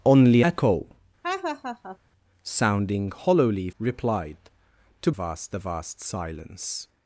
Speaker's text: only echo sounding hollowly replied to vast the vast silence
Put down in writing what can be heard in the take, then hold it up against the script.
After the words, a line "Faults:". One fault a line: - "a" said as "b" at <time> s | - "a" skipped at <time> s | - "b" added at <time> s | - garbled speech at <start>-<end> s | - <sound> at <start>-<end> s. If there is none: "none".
only echo sounding hollowly replied to vast the vast silence
Faults:
- laugh at 1.2-2.0 s